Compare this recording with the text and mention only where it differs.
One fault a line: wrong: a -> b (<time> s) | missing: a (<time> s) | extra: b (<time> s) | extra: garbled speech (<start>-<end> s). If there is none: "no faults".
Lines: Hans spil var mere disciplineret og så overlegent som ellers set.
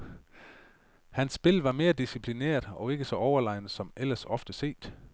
extra: ikke (2.9 s)
extra: ofte (4.2 s)